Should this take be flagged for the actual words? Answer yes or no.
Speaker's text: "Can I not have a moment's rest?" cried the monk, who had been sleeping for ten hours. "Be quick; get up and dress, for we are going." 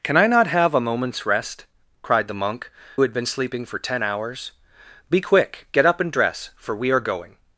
yes